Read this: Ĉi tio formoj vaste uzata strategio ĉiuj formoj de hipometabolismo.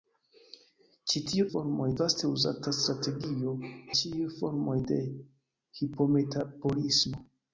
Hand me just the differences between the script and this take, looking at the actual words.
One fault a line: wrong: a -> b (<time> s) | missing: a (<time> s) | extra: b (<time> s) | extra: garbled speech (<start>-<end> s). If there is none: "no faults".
no faults